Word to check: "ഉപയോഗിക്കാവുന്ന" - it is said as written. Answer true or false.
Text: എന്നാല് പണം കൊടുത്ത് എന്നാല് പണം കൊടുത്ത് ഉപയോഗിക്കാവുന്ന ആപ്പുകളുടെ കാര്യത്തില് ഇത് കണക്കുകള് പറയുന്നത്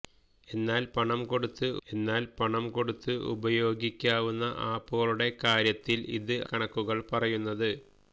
true